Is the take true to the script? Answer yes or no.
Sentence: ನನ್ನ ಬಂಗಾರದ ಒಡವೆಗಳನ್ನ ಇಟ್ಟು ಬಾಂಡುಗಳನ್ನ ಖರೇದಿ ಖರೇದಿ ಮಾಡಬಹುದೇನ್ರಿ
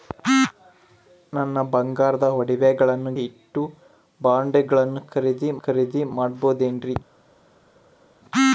yes